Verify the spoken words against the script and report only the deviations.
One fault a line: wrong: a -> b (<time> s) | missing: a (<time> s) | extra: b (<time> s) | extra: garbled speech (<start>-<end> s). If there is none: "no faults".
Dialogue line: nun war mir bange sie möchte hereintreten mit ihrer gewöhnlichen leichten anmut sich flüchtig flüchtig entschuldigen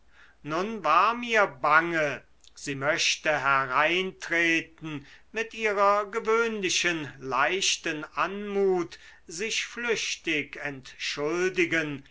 missing: flüchtig (10.6 s)